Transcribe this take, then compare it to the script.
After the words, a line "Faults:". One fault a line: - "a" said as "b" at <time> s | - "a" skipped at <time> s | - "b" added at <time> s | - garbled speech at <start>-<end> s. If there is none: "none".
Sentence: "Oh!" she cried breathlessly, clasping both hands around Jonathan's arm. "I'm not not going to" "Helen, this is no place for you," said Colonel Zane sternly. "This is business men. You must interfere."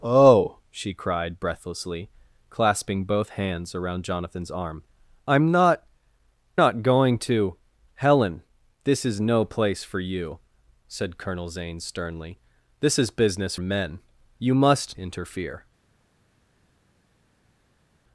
"Oh!" she cried breathlessly, clasping both hands around Jonathan's arm. "I'm not not going to" "Helen, this is no place for you," said Colonel Zane sternly. "This is business men. You must interfere."
Faults:
none